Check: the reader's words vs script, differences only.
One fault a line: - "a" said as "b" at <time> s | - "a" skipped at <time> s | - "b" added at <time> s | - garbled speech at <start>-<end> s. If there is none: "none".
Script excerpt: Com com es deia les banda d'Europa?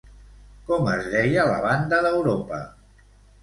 - "com" skipped at 0.9 s
- "les" said as "la" at 1.5 s